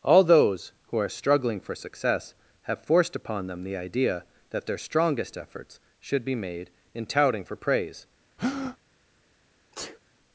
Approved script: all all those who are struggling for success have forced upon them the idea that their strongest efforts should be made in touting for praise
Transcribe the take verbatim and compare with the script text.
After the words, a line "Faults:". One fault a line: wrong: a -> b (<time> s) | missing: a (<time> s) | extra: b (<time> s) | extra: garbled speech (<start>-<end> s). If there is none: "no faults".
all those who are struggling for success have forced upon them the idea that their strongest efforts should be made in touting for praise
Faults:
missing: all (0.2 s)